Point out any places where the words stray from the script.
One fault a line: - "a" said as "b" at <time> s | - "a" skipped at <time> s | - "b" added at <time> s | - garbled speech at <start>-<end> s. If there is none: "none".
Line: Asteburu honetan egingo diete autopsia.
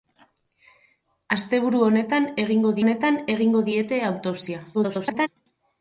- "honetan egingo" added at 2.8 s
- garbled speech at 4.7-5.3 s